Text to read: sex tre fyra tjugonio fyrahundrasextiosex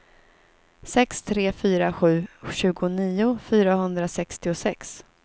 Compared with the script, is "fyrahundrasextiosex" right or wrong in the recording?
right